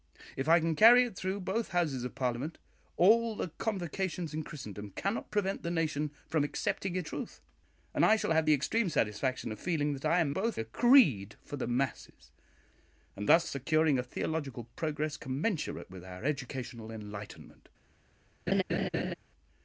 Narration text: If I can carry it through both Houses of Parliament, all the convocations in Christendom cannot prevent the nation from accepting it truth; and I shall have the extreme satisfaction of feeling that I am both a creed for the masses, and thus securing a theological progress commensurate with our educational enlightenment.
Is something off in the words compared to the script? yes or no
no